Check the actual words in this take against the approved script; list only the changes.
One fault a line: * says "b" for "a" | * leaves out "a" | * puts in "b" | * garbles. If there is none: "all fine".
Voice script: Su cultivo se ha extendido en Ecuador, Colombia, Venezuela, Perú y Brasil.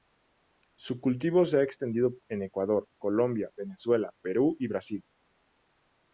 all fine